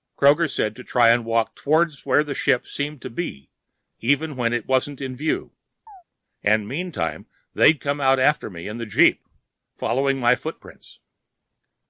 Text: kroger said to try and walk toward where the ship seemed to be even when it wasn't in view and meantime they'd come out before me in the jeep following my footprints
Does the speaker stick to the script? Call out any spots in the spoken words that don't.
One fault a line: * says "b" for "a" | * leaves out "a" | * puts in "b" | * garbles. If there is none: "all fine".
* says "after" for "before"